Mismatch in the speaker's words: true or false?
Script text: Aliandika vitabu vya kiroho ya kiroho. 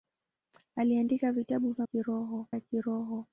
false